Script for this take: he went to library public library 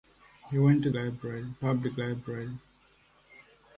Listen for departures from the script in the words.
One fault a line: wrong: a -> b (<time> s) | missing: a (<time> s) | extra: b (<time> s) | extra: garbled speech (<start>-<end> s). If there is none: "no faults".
no faults